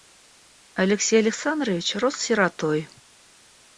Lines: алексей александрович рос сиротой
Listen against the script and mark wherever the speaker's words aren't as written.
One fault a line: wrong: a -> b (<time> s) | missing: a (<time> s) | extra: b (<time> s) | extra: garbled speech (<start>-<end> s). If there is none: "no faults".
no faults